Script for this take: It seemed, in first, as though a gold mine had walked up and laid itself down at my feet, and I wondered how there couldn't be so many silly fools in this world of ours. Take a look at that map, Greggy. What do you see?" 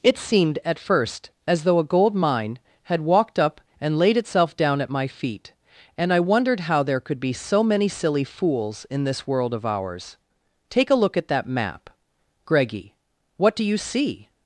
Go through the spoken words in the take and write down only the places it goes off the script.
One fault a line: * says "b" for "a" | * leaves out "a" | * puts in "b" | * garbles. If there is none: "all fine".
* says "at" for "in"
* says "could" for "couldn't"